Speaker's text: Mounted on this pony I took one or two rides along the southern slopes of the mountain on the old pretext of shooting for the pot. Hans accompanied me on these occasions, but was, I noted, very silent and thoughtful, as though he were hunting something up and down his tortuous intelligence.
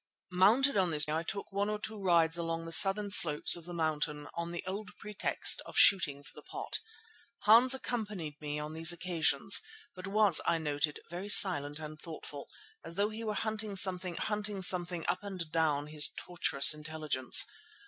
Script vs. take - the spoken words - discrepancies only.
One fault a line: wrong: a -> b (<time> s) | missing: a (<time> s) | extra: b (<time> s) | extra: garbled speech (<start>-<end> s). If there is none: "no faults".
missing: pony (1.1 s)
extra: hunting something (14.2 s)